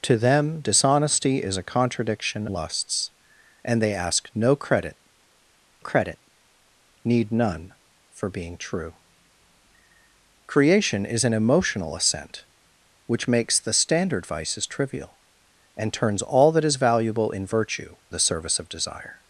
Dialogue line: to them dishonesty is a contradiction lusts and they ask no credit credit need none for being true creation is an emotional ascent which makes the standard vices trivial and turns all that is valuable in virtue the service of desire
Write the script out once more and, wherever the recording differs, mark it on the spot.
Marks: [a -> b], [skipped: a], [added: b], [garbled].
to them dishonesty is a contradiction lusts and they ask no credit credit need none for being true creation is an emotional ascent which makes the standard vices trivial and turns all that is valuable in virtue the service of desire